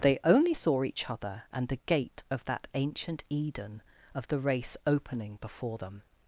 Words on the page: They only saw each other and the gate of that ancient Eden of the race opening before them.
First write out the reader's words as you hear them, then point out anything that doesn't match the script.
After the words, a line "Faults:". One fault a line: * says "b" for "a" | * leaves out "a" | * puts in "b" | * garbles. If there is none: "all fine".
They only saw each other and the gate of that ancient Eden of the race opening before them.
Faults:
all fine